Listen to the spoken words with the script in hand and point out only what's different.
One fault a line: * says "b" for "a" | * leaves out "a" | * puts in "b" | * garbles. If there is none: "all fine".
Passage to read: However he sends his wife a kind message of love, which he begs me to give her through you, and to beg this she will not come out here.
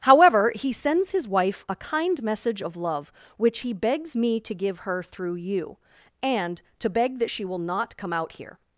* says "that" for "this"